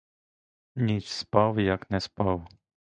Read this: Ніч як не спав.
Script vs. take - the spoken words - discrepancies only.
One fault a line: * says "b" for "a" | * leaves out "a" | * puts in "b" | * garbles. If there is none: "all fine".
* puts in "спав"